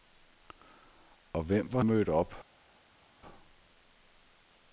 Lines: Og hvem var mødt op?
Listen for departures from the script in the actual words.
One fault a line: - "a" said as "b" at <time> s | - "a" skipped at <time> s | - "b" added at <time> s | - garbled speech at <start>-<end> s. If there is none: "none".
none